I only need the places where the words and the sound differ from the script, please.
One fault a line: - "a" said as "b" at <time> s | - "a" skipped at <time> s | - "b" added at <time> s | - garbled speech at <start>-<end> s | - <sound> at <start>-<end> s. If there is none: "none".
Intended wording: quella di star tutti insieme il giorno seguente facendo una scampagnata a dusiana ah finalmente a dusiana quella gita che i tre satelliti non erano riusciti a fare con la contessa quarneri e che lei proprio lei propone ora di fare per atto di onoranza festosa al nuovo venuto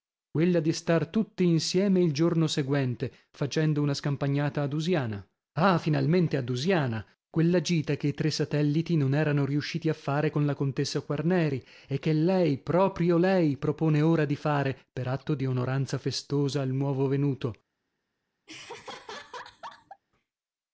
- laugh at 18.5-20.0 s